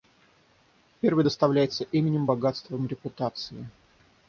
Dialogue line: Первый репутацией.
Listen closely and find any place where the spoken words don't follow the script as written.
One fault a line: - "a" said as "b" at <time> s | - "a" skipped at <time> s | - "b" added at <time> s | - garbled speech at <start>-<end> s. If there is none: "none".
- "доставляется именем богатством" added at 1.2 s